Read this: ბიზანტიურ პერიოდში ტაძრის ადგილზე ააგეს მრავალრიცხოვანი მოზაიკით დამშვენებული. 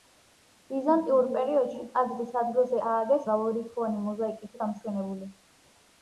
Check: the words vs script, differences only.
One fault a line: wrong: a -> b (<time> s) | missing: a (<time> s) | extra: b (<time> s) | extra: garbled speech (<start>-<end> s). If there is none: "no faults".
no faults